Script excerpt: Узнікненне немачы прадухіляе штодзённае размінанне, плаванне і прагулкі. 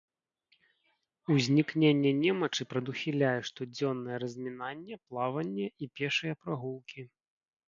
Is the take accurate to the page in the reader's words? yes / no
no